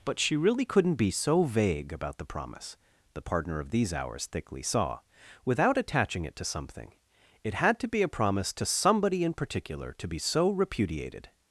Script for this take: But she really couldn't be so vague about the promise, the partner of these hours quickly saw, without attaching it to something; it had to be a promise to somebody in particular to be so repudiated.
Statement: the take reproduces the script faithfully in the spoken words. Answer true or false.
false